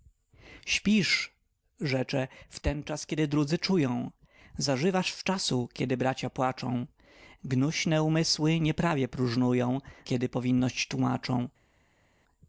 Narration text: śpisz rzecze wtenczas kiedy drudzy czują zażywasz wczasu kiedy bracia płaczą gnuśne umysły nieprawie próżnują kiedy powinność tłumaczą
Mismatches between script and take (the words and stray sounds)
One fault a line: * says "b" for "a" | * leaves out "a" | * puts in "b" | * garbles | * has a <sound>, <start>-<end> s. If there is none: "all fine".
all fine